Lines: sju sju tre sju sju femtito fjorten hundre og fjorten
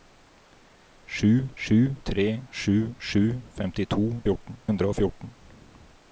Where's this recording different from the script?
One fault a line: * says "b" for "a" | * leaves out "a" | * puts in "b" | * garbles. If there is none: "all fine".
all fine